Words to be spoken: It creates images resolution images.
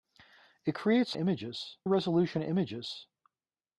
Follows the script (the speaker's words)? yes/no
yes